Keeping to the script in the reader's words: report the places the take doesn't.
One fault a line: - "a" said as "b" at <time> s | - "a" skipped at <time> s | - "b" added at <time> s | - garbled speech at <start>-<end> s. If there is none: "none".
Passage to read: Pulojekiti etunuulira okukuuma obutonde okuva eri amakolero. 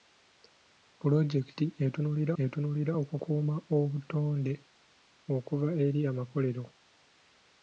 - "etunuulira" added at 2.4 s